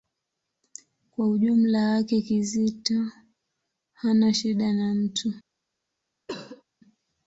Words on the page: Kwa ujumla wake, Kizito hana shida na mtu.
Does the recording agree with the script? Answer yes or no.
yes